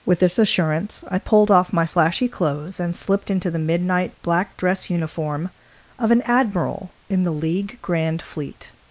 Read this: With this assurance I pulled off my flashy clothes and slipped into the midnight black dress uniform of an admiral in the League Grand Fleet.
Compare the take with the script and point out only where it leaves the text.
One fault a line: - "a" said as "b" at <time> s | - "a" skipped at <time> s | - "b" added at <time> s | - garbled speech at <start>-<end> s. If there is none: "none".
none